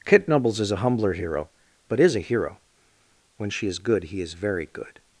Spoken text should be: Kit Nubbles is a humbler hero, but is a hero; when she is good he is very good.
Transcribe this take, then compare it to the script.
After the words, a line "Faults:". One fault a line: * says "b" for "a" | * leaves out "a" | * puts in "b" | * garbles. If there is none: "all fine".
Kit Nubbles is a humbler hero, but is a hero; when she is good he is very good.
Faults:
all fine